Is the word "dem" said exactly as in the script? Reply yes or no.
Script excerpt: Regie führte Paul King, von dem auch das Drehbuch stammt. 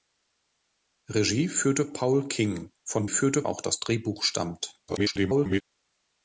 no